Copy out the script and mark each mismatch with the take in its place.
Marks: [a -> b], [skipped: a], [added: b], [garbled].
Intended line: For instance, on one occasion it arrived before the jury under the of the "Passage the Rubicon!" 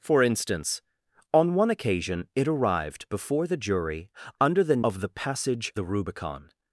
For instance, on one occasion it arrived before the jury under the of the "Passage the Rubicon!"